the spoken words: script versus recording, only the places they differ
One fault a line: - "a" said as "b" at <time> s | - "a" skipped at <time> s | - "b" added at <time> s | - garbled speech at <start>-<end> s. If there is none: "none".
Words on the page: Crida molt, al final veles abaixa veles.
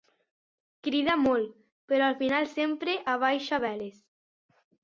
- "però" added at 1.9 s
- "veles" said as "sempre" at 2.5 s